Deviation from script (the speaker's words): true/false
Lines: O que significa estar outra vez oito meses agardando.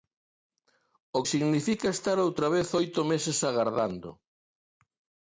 true